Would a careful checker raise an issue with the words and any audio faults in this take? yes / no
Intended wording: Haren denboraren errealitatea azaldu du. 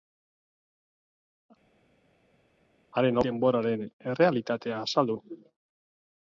no